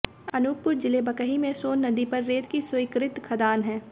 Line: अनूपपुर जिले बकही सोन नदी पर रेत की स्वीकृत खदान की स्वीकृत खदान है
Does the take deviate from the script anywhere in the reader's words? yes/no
yes